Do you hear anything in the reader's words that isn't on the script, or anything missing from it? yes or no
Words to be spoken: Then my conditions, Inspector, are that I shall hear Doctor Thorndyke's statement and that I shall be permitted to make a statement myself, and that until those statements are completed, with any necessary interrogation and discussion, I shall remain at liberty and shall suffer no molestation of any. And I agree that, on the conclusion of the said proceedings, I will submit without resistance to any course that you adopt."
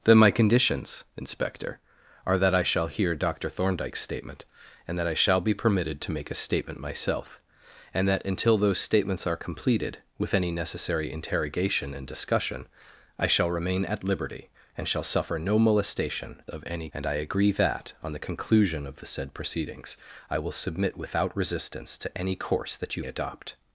no